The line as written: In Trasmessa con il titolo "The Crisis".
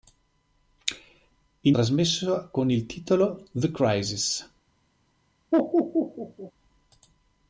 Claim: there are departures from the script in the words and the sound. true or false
true